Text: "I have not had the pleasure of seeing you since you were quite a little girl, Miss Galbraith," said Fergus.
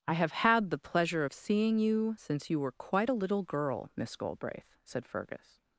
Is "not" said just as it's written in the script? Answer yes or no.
no